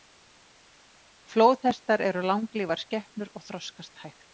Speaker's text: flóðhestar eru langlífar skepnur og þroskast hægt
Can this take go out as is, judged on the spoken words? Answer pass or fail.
pass